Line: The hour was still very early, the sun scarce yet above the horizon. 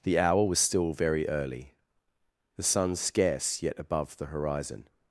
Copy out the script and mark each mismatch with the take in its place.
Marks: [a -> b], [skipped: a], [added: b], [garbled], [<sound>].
The hour was still very early, the sun scarce yet above the horizon.